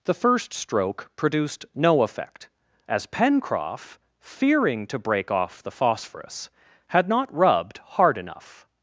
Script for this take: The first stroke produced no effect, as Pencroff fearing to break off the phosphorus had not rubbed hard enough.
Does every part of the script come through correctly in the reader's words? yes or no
yes